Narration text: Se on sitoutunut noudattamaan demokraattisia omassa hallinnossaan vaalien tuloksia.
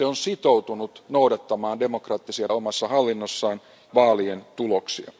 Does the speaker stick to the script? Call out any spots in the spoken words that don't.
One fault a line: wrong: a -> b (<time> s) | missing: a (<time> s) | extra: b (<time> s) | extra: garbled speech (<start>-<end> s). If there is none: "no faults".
no faults